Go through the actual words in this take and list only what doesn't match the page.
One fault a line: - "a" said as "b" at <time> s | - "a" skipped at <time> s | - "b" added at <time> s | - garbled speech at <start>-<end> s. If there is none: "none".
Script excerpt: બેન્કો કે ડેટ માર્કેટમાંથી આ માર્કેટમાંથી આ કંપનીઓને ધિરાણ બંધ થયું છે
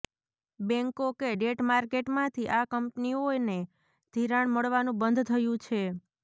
- "માર્કેટમાંથી આ" skipped at 2.7 s
- "મળવાનું" added at 4.5 s